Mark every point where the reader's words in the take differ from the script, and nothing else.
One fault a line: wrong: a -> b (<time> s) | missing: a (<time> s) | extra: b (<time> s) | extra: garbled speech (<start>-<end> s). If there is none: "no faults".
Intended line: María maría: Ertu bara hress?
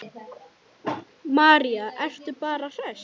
missing: maría (1.9 s)